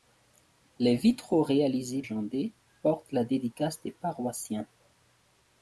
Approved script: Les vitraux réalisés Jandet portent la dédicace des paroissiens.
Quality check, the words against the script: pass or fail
pass